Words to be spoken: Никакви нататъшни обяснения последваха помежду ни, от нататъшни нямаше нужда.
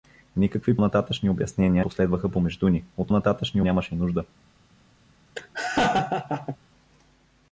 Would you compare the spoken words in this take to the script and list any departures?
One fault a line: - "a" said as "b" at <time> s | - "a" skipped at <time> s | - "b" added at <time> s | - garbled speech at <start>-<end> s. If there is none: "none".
none